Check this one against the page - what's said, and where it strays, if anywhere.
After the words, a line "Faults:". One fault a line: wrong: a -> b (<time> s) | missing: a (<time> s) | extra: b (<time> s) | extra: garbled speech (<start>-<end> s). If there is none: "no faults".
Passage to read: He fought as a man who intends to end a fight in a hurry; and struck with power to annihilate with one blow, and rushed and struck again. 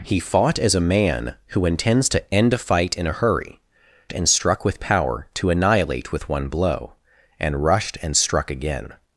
He fought as a man who intends to end a fight in a hurry; and struck with power to annihilate with one blow, and rushed and struck again.
Faults:
no faults